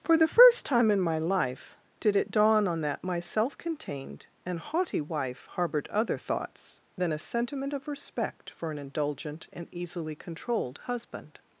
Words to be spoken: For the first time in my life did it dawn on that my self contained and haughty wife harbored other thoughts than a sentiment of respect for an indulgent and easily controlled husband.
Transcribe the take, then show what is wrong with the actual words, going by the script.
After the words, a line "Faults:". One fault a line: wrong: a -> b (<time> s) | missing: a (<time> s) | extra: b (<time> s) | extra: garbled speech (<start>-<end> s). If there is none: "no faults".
For the first time in my life did it dawn on that my self contained and haughty wife harbored other thoughts than a sentiment of respect for an indulgent and easily controlled husband.
Faults:
no faults